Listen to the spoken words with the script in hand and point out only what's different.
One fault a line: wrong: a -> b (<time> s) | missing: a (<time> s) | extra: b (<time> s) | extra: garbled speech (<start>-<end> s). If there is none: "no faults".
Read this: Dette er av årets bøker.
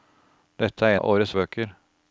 no faults